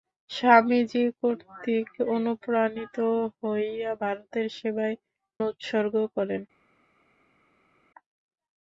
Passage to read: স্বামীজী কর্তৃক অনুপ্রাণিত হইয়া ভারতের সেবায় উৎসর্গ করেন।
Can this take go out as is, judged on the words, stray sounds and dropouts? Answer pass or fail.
pass